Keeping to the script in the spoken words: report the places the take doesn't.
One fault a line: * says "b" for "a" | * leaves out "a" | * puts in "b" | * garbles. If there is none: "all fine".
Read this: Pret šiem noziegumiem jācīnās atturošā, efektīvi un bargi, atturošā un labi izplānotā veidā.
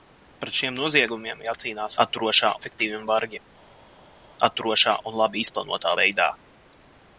all fine